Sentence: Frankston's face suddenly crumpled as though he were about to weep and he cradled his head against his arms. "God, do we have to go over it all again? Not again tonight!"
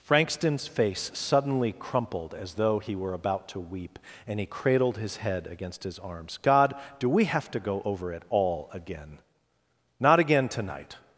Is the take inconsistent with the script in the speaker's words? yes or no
no